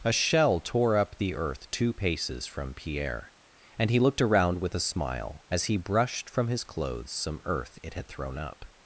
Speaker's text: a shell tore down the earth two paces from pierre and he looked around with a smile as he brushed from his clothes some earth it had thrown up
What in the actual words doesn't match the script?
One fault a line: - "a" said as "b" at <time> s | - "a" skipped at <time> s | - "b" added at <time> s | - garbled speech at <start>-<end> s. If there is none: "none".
- "down" said as "up" at 1.0 s